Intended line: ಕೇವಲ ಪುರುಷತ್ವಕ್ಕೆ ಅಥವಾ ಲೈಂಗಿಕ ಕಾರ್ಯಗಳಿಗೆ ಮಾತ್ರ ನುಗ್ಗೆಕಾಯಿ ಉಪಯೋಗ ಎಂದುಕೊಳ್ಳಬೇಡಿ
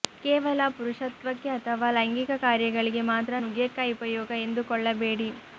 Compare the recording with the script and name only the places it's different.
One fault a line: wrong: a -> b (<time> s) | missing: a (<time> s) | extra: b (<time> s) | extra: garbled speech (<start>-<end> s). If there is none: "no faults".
no faults